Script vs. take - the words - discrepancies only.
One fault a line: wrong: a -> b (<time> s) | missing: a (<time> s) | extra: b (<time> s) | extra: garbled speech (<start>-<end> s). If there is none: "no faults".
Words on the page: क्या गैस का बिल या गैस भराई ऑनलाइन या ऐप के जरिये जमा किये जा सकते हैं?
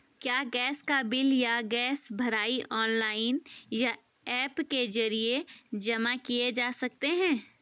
no faults